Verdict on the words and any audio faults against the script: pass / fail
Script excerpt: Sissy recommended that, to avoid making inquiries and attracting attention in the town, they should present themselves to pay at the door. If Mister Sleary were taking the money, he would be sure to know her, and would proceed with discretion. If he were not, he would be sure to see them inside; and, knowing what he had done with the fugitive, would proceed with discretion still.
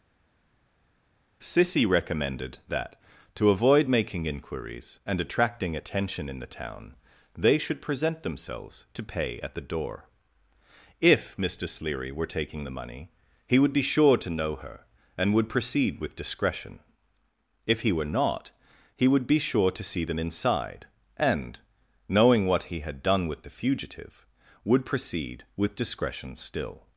pass